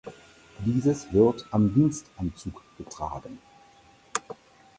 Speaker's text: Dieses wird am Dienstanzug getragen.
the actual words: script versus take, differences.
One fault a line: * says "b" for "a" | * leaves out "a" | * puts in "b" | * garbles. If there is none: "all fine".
all fine